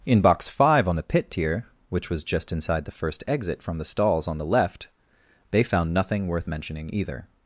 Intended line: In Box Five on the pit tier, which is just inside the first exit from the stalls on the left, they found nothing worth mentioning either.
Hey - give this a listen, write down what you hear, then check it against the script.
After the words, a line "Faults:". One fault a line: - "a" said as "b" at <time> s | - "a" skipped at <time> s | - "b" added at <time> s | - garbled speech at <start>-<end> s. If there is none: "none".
In Box Five on the pit tier, which was just inside the first exit from the stalls on the left, they found nothing worth mentioning either.
Faults:
- "is" said as "was" at 2.1 s